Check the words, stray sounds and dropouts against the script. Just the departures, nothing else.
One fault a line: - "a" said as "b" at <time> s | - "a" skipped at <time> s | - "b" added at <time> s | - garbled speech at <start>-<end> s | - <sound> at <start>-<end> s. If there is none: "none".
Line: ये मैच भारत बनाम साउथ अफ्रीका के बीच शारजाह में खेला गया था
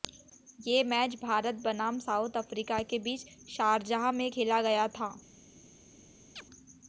- chirp at 6.4-6.5 s